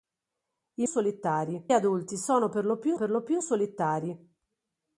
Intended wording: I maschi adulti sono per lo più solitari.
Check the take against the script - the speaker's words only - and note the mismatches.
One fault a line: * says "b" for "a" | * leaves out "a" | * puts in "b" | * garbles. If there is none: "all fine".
* says "solitari" for "maschi"
* puts in "per lo più"